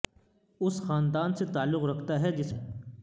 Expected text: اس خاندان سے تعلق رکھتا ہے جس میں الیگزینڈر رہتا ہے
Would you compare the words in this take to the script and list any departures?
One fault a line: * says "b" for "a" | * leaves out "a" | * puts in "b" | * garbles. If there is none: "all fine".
* leaves out "میں الیگزینڈر رہتا"